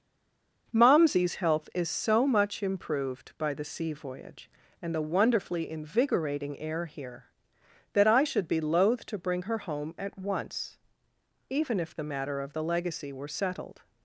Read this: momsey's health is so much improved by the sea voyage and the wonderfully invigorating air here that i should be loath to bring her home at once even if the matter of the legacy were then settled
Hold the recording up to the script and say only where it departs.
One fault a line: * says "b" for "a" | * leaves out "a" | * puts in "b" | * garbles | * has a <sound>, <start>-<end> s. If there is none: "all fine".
* leaves out "then"